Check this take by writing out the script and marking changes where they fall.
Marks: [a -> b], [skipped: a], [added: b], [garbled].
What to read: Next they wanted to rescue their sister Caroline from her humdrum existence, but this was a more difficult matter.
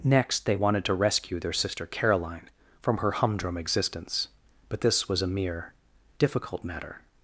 Next they wanted to rescue their sister Caroline from her humdrum existence, but this was a [more -> mere] difficult matter.